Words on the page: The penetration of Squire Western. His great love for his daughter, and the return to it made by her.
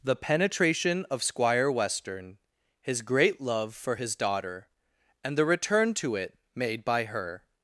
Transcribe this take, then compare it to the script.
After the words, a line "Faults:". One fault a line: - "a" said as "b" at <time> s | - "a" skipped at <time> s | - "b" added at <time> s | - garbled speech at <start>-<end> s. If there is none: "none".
The penetration of Squire Western. His great love for his daughter, and the return to it made by her.
Faults:
none